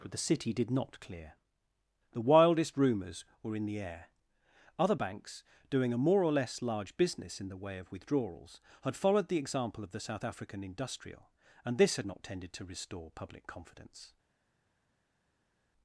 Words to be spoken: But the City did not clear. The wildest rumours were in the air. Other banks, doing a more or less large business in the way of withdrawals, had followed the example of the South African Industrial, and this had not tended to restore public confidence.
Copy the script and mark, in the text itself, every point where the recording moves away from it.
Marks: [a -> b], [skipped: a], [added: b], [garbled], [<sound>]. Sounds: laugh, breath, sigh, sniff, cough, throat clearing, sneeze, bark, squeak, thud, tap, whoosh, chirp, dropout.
But the City did not clear. The wildest rumours were in the air. Other banks, doing a more or less large business in the way of withdrawals, had followed the example of the South African Industrial, and this had not tended to restore public confidence.